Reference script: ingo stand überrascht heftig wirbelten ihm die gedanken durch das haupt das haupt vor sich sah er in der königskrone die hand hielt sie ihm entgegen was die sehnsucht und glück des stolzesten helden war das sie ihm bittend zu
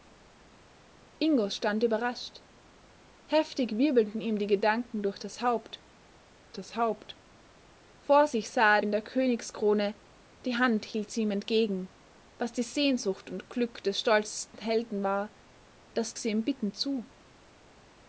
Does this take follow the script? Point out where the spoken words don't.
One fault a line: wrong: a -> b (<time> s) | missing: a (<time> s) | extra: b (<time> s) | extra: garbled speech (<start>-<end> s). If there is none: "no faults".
no faults